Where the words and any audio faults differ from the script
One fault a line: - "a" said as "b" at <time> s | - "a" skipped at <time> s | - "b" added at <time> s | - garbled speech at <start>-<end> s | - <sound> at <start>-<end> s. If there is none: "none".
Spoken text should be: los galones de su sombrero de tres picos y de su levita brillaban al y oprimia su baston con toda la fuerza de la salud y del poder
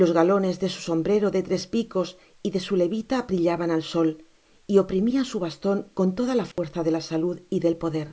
- "sol" added at 3.8 s
- dropout at 6.5-6.6 s